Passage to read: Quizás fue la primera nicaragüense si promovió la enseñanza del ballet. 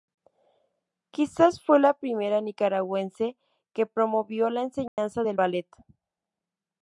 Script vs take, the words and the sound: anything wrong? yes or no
yes